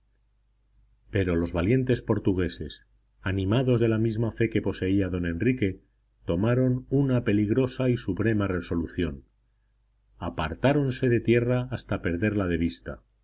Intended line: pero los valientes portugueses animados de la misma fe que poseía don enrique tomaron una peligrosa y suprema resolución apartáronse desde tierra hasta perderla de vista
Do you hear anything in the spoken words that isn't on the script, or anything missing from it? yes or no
yes